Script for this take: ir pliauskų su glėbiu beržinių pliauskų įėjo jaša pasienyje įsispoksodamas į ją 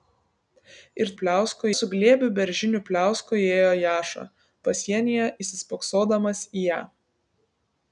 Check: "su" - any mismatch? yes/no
no